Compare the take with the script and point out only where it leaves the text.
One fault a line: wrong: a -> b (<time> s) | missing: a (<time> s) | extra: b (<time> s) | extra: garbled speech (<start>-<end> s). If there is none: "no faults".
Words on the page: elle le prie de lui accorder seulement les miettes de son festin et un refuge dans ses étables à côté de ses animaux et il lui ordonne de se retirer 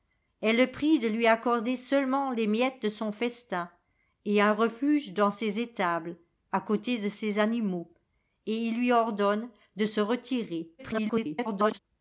extra: garbled speech (10.8-11.8 s)